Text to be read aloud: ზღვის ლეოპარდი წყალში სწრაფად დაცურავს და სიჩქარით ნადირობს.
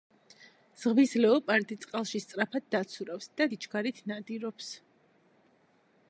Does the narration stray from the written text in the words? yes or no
no